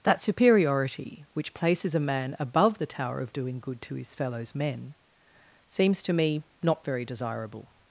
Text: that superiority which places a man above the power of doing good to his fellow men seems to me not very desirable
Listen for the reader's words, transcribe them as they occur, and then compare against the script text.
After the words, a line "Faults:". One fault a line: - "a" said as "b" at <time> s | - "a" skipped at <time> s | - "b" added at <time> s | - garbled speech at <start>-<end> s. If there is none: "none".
that superiority which places a man above the tower of doing good to his fellows men seems to me not very desirable
Faults:
- "power" said as "tower" at 2.9 s
- "fellow" said as "fellows" at 4.2 s